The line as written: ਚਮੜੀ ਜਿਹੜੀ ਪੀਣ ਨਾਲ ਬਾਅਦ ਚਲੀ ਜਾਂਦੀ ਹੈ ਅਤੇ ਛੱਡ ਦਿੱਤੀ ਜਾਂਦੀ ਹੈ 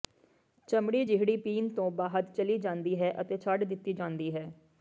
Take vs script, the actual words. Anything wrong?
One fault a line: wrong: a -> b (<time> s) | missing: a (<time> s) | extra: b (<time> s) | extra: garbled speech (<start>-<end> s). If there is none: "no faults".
wrong: ਨਾਲ -> ਤੋਂ (1.7 s)